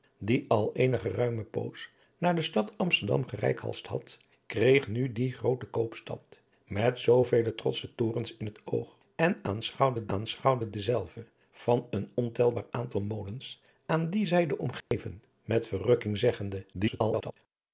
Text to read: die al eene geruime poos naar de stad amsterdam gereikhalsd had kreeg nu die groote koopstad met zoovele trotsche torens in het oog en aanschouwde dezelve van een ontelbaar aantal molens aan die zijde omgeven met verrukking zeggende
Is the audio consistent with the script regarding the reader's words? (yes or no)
no